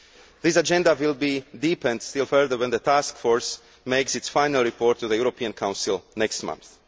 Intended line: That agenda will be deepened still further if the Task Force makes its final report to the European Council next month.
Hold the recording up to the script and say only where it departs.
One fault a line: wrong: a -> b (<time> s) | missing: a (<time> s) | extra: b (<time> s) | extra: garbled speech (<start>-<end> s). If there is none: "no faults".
wrong: That -> This (0.4 s)
wrong: if -> when (2.6 s)